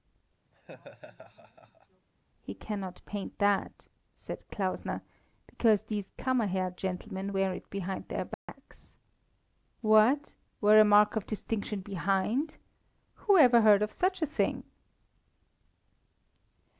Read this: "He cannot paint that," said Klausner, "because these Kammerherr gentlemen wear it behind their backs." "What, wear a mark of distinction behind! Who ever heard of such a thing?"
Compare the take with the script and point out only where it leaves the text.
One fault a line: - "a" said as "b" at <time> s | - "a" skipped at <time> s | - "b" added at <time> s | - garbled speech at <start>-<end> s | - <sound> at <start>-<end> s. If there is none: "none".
- laugh at 0.5-2.1 s
- dropout at 8.3-8.5 s